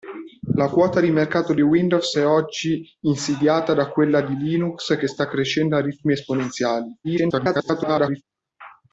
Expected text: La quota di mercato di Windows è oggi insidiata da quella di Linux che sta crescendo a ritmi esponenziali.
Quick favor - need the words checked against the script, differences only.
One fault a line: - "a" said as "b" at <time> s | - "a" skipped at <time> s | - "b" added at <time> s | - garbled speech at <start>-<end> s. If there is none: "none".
- garbled speech at 7.0-8.2 s